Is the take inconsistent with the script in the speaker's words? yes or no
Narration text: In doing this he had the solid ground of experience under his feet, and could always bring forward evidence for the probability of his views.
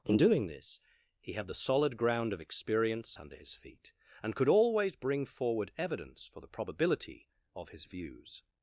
no